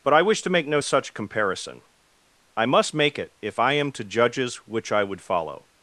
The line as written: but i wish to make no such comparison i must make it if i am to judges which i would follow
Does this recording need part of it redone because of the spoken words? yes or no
no